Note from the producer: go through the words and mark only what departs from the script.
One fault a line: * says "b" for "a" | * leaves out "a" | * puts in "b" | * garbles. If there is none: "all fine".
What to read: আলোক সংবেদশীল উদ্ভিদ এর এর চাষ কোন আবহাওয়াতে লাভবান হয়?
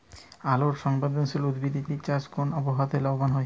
all fine